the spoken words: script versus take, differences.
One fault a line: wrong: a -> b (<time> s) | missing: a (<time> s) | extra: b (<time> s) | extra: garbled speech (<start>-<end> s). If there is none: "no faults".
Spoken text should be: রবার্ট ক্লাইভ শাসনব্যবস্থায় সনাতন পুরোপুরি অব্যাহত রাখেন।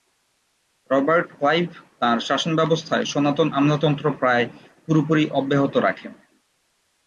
extra: তাঁর (2.0 s)
extra: আমলাতন্ত্র প্রায় (3.5 s)